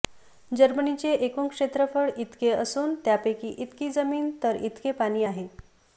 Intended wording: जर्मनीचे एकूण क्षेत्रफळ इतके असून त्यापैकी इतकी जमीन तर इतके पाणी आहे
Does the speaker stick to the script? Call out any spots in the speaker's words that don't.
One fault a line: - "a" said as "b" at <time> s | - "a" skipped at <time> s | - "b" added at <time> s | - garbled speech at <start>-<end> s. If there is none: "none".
none